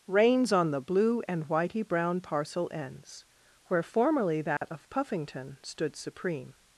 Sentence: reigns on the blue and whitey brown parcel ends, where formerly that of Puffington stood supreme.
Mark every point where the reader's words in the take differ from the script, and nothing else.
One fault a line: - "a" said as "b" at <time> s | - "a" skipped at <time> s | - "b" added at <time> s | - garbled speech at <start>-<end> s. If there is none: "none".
none